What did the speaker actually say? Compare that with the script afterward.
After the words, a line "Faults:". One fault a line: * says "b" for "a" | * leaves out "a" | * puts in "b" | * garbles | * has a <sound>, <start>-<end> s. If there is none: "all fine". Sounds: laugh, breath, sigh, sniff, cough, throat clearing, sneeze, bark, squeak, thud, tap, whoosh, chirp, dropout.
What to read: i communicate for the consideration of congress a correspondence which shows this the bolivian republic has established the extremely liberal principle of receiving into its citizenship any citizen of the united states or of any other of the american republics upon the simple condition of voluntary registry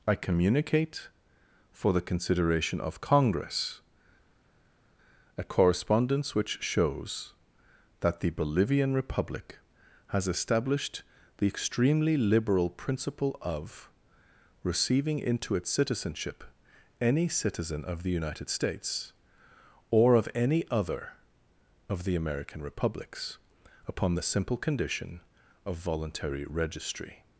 i communicate for the consideration of congress a correspondence which shows that the bolivian republic has established the extremely liberal principle of receiving into its citizenship any citizen of the united states or of any other of the american republics upon the simple condition of voluntary registry
Faults:
* says "that" for "this"